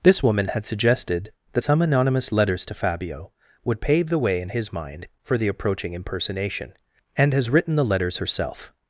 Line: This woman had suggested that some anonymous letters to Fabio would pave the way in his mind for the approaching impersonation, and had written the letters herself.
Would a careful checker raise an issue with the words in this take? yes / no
yes